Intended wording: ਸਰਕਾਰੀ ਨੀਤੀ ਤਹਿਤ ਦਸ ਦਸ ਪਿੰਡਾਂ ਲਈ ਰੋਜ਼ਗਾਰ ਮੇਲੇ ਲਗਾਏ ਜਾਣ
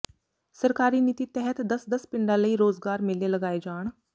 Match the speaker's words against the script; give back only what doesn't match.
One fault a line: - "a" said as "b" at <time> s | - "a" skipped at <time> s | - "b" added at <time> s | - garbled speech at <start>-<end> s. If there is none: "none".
none